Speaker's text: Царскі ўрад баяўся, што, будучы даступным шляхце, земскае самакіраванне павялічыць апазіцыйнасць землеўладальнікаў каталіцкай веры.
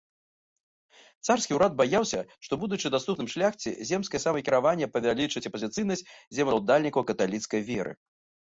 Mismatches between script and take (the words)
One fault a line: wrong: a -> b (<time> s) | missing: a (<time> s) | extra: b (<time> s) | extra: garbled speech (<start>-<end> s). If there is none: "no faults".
no faults